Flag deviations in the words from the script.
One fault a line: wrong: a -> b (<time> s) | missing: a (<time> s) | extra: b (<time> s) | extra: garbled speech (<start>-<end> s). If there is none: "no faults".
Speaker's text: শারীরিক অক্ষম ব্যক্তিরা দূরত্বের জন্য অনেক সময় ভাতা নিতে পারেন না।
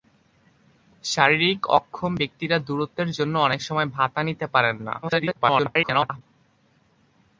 extra: garbled speech (5.0-6.2 s)